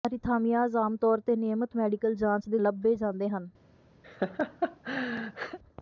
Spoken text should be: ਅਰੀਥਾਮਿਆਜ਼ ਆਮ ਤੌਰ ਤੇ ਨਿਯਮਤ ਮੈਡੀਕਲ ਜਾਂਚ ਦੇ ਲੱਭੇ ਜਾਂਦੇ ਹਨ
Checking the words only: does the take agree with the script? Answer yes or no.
yes